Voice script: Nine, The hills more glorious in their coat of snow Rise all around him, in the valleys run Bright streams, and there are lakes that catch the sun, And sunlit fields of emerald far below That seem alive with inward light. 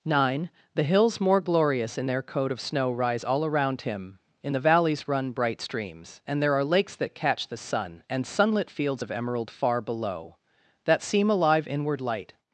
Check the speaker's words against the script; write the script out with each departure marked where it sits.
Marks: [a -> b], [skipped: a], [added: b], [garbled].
Nine, The hills more glorious in their coat of snow Rise all around him, in the valleys run Bright streams, and there are lakes that catch the sun, And sunlit fields of emerald far below That seem alive [skipped: with] inward light.